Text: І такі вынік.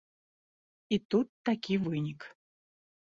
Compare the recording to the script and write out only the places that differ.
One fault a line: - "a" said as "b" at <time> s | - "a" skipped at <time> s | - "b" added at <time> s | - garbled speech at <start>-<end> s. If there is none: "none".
- "тут" added at 1.1 s